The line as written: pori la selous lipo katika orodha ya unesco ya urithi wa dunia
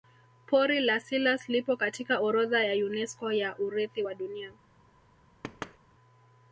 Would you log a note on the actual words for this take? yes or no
no